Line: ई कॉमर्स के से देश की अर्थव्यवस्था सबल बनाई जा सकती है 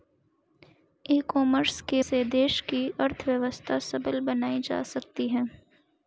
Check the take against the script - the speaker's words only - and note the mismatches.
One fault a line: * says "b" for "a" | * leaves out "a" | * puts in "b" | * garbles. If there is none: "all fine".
all fine